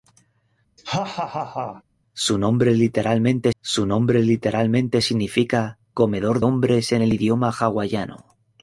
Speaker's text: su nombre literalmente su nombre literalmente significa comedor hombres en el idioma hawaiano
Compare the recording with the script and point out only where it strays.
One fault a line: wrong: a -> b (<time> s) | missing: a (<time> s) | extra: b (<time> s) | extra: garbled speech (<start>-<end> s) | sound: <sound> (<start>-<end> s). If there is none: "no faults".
sound: laugh (0.8-1.8 s)